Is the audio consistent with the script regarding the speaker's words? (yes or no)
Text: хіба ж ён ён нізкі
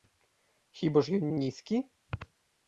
yes